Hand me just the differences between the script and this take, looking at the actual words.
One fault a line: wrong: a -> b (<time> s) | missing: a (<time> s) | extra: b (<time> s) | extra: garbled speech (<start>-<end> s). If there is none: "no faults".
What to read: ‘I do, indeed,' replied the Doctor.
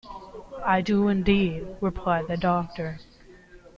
no faults